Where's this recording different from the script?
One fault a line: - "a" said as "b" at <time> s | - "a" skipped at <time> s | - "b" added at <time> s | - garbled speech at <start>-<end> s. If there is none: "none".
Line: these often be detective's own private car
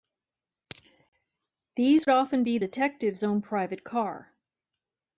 none